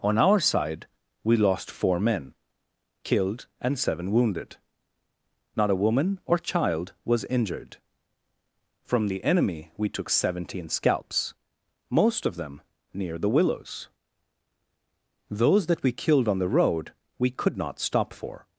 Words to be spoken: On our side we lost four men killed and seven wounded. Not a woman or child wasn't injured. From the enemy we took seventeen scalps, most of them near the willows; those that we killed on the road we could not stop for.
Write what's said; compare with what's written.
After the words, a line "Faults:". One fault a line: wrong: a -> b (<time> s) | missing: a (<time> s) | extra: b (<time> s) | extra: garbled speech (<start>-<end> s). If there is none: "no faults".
On our side we lost four men killed and seven wounded. Not a woman or child was injured. From the enemy we took seventeen scalps, most of them near the willows; those that we killed on the road we could not stop for.
Faults:
wrong: wasn't -> was (7.0 s)